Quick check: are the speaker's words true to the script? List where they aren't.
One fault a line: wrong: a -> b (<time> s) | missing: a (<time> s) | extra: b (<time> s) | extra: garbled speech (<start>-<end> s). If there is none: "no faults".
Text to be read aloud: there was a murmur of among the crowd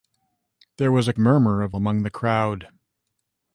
no faults